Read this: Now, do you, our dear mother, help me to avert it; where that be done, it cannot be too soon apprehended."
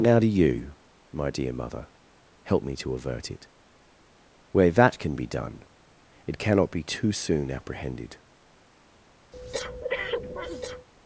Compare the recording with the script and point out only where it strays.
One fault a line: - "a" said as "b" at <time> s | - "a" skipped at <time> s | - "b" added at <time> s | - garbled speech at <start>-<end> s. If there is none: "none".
- "our" said as "my" at 1.1 s
- "can" added at 5.0 s